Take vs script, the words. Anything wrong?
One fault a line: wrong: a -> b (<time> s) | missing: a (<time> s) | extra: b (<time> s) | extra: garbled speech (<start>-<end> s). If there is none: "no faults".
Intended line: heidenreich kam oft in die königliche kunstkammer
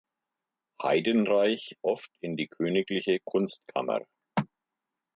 missing: kam (1.8 s)